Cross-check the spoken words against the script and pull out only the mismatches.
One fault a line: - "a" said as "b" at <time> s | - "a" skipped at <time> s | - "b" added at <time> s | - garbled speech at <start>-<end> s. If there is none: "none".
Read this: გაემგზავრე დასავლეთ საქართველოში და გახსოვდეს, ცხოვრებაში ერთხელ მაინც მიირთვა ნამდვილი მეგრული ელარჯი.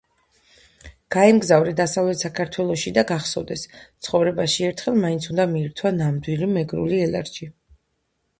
- "უნდა" added at 5.3 s